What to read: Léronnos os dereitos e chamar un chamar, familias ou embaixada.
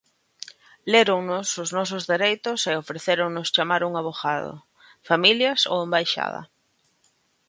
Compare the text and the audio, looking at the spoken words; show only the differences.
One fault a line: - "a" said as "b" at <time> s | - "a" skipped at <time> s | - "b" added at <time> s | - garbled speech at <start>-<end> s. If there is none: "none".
- "nosos" added at 1.8 s
- "ofrecéronnos" added at 2.8 s
- "chamar" said as "avogado" at 4.0 s